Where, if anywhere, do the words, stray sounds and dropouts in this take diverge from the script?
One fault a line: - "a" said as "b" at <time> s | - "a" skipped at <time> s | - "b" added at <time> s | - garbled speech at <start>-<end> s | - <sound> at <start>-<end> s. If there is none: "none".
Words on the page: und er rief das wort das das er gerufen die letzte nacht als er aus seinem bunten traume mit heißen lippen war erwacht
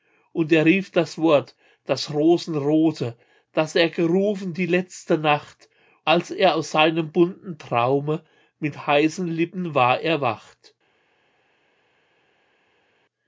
- "rosenrote" added at 2.1 s